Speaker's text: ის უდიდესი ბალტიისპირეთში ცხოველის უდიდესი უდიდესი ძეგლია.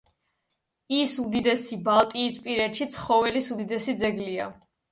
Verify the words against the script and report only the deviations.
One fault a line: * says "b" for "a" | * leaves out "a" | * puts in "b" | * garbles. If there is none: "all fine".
* leaves out "უდიდესი"